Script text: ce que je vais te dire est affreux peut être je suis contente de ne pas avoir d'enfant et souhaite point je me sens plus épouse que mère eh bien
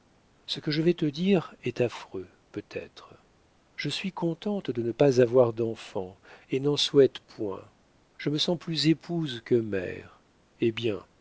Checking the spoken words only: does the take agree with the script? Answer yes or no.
no